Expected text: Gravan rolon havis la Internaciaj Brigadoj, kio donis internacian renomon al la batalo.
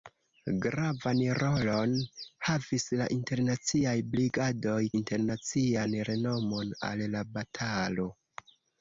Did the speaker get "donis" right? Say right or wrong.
wrong